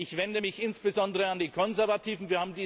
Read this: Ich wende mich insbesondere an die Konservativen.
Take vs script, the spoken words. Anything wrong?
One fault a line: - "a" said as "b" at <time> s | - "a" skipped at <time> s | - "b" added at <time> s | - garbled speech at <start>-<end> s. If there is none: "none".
none